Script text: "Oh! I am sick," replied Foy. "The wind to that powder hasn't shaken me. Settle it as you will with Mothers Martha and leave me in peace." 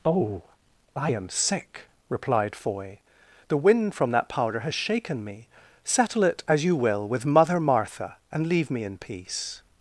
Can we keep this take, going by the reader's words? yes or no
no